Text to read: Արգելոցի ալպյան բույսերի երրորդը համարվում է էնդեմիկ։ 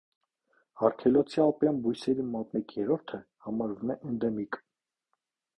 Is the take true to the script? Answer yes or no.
no